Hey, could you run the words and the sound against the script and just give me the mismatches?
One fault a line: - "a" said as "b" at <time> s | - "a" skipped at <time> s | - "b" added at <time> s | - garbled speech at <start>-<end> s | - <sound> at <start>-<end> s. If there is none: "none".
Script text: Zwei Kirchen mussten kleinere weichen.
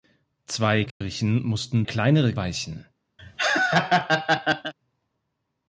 - dropout at 0.9-1.0 s
- laugh at 3.2-4.7 s